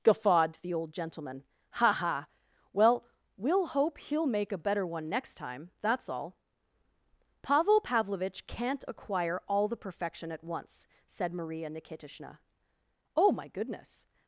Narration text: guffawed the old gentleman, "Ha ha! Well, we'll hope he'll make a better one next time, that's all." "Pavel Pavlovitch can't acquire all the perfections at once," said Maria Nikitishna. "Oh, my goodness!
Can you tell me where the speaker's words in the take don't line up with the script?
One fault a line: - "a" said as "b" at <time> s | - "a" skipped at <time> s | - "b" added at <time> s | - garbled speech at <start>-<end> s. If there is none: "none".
- "perfections" said as "perfection" at 9.8 s